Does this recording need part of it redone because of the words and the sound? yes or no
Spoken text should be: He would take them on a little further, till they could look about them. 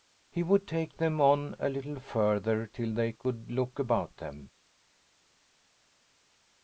no